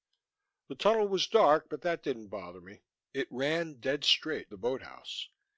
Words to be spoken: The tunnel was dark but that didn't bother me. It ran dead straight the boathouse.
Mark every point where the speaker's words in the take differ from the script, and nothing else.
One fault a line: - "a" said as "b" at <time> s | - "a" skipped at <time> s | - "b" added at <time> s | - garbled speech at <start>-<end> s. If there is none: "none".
none